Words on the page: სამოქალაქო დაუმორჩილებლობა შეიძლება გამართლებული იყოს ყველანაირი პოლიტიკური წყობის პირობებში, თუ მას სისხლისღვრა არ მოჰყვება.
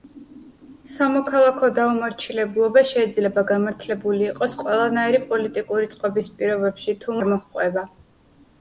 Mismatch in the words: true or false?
true